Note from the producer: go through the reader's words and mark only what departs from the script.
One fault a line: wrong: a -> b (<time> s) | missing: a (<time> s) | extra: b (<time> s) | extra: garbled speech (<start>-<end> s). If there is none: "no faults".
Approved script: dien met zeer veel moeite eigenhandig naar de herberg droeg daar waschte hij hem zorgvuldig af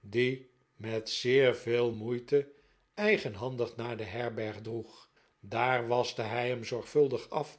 no faults